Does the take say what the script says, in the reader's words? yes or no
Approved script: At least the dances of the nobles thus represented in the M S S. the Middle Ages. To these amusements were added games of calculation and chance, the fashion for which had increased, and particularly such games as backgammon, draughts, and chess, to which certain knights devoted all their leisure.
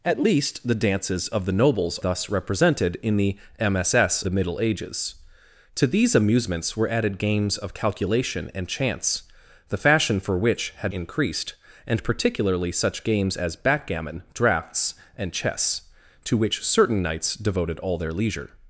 yes